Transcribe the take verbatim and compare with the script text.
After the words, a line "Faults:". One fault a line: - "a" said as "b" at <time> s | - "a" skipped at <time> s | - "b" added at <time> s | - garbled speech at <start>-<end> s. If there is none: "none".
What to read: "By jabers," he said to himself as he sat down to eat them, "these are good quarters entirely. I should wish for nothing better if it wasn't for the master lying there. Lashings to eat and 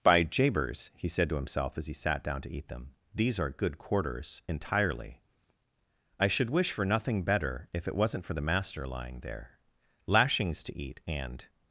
"By jabers," he said to himself as he sat down to eat them, "these are good quarters entirely. I should wish for nothing better if it wasn't for the master lying there. Lashings to eat and
Faults:
none